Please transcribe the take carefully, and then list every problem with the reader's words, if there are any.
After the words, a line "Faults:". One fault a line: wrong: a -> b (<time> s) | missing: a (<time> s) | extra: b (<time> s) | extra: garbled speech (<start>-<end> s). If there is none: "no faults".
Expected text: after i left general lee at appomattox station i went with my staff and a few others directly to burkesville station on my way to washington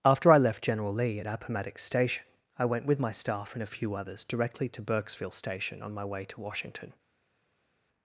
after i left general lee at appomattox station i went with my staff and a few others directly to burkesville station on my way to washington
Faults:
no faults